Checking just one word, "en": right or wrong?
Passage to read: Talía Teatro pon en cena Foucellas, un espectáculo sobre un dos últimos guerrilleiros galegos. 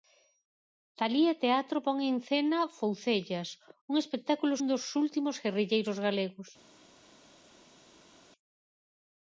right